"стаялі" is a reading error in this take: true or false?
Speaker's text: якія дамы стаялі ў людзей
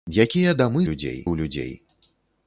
true